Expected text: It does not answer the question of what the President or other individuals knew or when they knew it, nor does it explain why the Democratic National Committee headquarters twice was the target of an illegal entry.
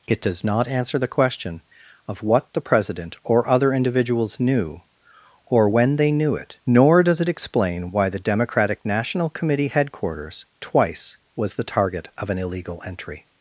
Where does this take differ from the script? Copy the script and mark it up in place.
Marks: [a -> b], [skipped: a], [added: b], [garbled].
It does not answer the question of what the President or other individuals knew or when they knew it, nor does it explain why the Democratic National Committee headquarters twice was the target of an illegal entry.